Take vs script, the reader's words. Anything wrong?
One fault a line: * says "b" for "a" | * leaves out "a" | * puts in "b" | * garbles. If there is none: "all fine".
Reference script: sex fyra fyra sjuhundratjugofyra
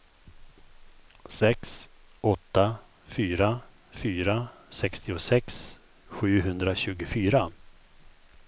* puts in "åtta"
* puts in "sextiosex"